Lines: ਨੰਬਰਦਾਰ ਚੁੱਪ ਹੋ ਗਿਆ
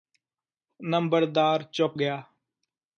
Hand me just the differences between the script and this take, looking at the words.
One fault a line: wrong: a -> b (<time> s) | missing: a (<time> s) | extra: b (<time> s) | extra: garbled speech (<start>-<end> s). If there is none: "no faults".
missing: ਹੋ (2.0 s)